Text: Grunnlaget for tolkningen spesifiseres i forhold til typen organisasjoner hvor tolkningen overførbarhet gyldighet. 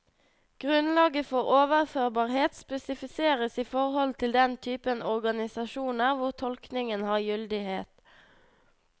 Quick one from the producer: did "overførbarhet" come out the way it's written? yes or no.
no